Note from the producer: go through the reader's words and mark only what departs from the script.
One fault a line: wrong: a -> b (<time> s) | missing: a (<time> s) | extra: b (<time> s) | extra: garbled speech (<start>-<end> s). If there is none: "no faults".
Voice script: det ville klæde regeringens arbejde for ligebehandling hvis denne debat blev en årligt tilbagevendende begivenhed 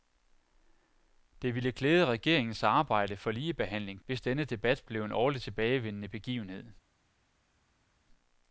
no faults